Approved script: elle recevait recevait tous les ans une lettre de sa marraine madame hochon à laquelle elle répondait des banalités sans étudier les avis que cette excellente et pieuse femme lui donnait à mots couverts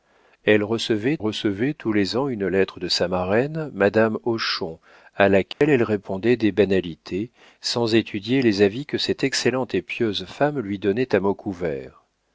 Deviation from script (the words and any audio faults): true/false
true